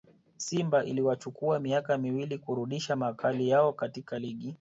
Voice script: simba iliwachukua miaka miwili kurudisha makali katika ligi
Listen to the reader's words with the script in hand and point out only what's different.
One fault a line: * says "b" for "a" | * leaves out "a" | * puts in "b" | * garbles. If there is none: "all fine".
* puts in "yao"